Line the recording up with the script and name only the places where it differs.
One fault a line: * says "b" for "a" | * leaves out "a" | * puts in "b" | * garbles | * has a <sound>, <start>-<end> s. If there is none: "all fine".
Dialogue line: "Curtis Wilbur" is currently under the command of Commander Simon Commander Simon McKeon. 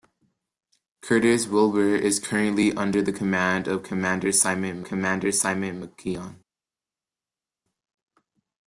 all fine